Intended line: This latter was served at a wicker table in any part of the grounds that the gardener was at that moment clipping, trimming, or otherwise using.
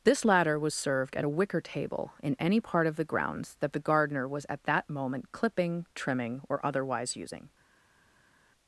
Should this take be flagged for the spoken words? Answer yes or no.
no